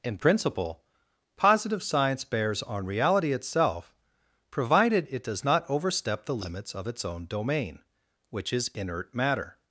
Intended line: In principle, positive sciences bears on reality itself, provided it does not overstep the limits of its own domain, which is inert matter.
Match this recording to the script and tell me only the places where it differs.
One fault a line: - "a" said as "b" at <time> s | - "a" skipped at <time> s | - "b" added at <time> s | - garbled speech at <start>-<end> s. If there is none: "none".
- "sciences" said as "science" at 1.8 s